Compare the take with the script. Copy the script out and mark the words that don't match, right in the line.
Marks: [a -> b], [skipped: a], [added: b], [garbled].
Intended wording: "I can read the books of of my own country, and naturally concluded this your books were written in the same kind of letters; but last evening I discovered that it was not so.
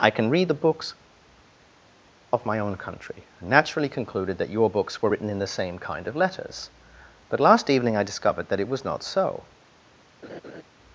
"I can read the books of [skipped: of] my own country, and naturally concluded [this -> that] your books were written in the same kind of letters; but last evening I discovered that it was not so.